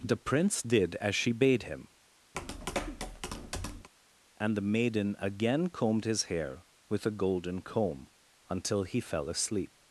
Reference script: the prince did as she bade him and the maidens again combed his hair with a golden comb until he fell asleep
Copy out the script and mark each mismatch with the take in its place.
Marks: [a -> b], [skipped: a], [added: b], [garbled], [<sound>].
the prince did as she bade him [tap] and the [maidens -> maiden] again combed his hair with a golden comb until he fell asleep